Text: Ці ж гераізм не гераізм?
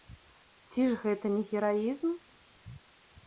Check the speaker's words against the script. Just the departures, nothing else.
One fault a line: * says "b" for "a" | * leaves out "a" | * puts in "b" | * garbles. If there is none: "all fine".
* says "гэта" for "гераізм"